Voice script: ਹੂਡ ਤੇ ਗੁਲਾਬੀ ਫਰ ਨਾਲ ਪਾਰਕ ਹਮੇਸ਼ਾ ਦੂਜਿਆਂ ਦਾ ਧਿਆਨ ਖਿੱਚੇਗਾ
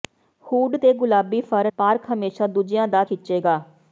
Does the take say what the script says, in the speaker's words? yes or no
no